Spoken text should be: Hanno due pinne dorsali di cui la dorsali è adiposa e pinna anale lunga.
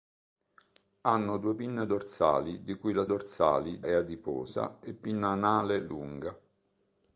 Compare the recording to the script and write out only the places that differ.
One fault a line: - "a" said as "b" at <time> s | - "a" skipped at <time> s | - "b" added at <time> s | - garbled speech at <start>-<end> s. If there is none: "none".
none